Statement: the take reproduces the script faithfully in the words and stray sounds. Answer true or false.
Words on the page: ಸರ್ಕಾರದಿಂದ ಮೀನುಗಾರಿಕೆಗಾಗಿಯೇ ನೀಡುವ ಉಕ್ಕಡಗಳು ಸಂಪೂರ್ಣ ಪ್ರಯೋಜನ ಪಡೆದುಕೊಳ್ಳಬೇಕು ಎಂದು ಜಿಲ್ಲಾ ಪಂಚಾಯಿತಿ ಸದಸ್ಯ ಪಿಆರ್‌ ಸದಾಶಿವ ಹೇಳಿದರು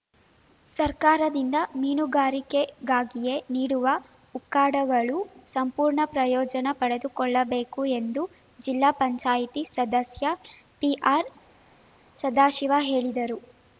true